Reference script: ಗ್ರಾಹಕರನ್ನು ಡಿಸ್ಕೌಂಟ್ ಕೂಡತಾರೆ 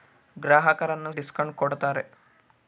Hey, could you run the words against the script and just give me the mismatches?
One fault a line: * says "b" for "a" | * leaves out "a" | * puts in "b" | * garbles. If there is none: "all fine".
all fine